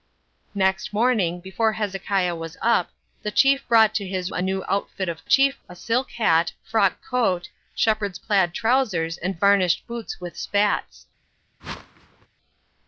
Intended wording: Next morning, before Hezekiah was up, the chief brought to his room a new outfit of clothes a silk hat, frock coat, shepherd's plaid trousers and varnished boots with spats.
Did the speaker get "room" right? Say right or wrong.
wrong